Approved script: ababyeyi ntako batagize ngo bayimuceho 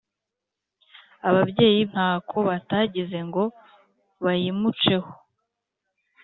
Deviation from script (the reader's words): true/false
false